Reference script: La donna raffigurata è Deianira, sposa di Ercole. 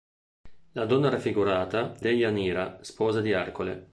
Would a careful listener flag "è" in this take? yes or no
yes